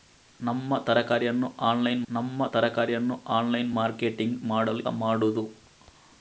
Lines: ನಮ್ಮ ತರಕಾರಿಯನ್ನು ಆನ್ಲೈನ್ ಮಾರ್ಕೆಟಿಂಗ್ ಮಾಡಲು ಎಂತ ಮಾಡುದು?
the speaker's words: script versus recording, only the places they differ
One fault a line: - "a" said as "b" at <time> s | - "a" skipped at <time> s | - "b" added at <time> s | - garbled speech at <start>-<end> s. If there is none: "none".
- "ನಮ್ಮ ತರಕಾರಿಯನ್ನು ಆನ್ಲೈನ್" added at 2.1 s
- "ಎಂತ" skipped at 4.8 s